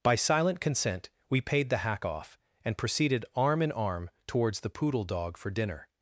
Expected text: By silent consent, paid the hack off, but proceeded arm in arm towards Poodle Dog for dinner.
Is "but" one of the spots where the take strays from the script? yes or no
yes